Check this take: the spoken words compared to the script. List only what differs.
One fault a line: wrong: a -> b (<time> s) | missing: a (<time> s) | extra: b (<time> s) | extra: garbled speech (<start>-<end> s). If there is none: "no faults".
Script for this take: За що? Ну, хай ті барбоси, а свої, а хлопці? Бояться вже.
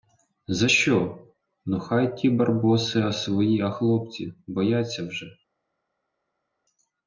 no faults